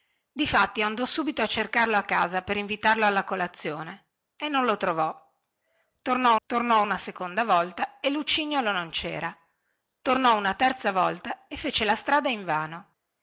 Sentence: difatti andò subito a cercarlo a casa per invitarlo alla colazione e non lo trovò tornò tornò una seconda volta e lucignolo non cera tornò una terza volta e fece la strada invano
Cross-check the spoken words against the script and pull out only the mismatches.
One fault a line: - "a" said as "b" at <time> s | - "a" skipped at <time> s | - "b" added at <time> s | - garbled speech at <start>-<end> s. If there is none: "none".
none